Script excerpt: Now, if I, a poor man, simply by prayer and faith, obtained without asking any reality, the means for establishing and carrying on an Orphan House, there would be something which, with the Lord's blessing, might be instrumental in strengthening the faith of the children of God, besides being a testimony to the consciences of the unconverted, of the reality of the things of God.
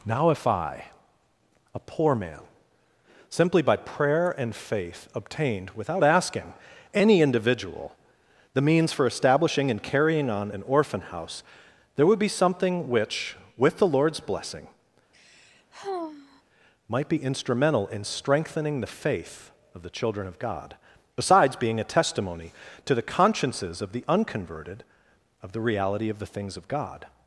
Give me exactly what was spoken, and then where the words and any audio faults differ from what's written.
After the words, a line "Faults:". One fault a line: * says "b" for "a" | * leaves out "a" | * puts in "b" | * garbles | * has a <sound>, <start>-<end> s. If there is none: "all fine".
Now, if I, a poor man, simply by prayer and faith, obtained without asking any individual, the means for establishing and carrying on an Orphan House, there would be something which, with the Lord's blessing, might be instrumental in strengthening the faith of the children of God, besides being a testimony to the consciences of the unconverted, of the reality of the things of God.
Faults:
* says "individual" for "reality"
* has a sigh, 15.1-16.4 s